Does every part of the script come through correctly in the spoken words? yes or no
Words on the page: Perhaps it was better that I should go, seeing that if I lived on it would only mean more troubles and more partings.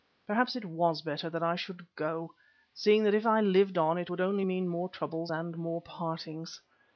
yes